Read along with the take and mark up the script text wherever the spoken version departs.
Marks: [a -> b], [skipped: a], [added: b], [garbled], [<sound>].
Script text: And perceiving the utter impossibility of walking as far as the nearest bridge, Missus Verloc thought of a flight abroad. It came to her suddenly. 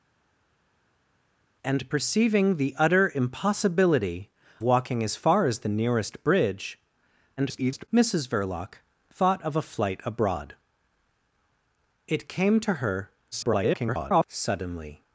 And perceiving the utter impossibility [skipped: of] walking as far as the nearest bridge, [garbled] Missus Verloc thought of a flight abroad. It came to her [garbled] suddenly.